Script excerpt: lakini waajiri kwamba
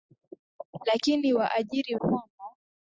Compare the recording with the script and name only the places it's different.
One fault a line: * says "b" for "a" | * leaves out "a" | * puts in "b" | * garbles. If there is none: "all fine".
all fine